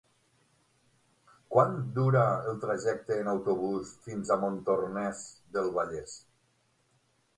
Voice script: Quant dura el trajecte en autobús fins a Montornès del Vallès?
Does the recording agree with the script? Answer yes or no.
yes